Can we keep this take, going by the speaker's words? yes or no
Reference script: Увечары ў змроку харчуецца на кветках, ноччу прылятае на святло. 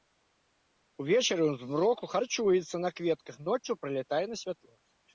yes